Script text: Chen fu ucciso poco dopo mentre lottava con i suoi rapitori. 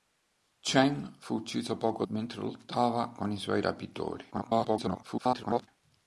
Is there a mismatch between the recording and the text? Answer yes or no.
yes